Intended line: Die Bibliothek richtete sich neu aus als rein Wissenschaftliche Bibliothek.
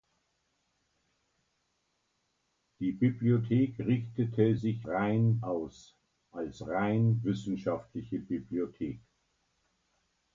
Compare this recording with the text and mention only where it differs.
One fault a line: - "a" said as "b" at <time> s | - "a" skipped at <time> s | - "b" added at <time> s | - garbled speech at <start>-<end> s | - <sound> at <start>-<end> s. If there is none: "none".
- "neu" said as "rein" at 4.9 s